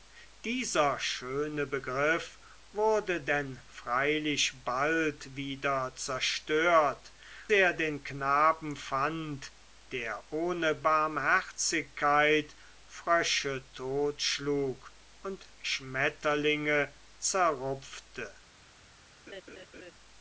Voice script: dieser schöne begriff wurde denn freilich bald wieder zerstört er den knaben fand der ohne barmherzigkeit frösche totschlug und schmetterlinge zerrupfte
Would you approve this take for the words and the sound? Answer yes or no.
no